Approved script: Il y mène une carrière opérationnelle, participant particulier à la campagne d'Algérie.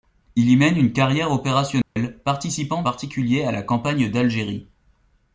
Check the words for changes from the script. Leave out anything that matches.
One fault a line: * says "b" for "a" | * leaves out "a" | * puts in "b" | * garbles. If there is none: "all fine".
all fine